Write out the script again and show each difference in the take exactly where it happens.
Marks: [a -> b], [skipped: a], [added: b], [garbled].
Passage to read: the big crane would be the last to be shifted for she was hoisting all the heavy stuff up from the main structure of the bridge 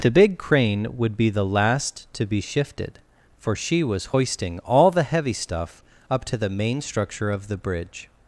the big crane would be the last to be shifted for she was hoisting all the heavy stuff up [from -> to] the main structure of the bridge